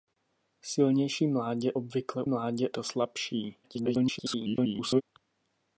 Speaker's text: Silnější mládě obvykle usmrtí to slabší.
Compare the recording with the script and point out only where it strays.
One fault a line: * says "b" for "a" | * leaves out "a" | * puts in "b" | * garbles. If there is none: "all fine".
* says "mládě" for "usmrtí"
* garbles